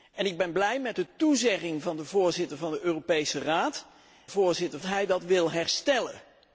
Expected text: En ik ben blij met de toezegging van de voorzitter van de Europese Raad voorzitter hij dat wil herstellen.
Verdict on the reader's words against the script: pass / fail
pass